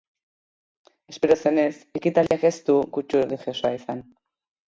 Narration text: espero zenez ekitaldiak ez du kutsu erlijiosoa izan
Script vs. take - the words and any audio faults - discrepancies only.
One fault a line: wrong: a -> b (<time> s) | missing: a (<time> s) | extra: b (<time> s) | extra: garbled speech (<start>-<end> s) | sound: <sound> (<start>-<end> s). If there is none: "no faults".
sound: dropout (2.3-2.3 s)